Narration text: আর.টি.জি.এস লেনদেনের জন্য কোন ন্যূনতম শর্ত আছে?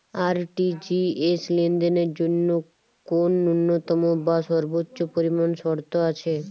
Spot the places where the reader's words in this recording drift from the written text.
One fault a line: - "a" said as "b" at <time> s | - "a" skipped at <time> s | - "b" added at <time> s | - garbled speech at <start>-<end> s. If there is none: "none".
- "বা সর্বোচ্চ পরিমাণ" added at 4.3 s